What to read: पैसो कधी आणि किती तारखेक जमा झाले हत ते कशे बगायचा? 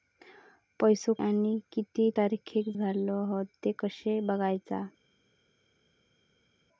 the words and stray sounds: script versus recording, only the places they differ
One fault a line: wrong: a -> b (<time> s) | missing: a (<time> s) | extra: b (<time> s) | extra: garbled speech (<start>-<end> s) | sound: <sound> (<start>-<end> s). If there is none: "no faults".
missing: कधी (1.1 s)
missing: जमा (2.7 s)